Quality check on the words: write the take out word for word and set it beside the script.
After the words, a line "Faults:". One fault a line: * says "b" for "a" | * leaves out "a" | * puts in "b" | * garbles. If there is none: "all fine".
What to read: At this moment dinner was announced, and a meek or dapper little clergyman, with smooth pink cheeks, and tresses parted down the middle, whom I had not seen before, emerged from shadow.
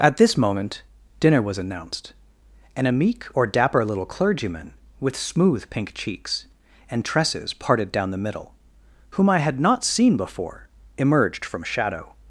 At this moment dinner was announced, and a meek or dapper little clergyman, with smooth pink cheeks, and tresses parted down the middle, whom I had not seen before, emerged from shadow.
Faults:
all fine